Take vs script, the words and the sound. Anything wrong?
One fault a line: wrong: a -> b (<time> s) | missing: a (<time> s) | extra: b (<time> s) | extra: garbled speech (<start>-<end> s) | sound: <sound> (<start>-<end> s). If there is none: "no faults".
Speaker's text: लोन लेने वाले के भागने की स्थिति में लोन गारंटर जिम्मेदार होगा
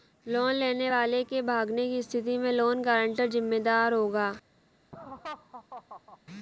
sound: laugh (4.9-6.2 s)